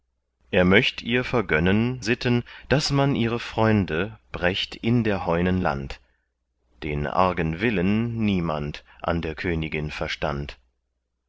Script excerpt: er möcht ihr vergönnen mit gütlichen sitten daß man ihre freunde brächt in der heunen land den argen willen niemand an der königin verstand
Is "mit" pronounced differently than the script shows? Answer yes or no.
yes